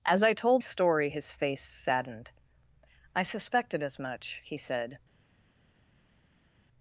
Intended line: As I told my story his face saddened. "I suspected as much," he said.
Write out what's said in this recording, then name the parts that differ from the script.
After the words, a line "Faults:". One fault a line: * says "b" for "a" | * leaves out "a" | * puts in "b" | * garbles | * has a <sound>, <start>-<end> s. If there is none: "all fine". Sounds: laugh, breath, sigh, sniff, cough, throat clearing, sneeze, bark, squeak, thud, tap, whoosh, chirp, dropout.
As I told story his face saddened. "I suspected as much," he said.
Faults:
* leaves out "my"